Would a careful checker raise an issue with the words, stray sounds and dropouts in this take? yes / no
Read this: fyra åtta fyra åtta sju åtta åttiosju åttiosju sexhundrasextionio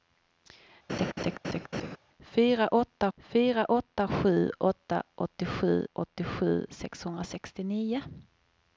yes